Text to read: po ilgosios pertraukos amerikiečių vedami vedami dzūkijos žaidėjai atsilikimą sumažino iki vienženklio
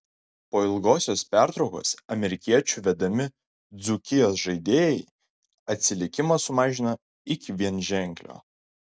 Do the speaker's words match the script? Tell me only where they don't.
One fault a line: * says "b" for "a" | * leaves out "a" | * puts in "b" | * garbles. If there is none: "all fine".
* leaves out "vedami"